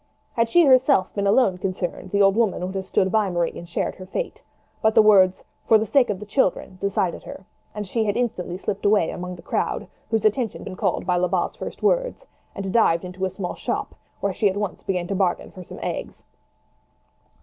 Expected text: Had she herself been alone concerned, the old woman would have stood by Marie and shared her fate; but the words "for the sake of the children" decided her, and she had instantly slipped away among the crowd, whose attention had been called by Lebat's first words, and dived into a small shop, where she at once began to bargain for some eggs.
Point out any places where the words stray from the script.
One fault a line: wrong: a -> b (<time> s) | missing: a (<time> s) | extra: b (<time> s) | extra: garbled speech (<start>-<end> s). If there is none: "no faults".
missing: had (10.7 s)